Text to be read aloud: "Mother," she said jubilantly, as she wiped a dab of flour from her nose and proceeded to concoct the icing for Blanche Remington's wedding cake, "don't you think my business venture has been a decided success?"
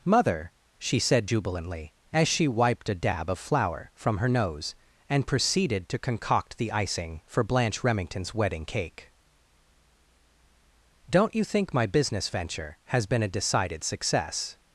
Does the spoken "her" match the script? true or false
true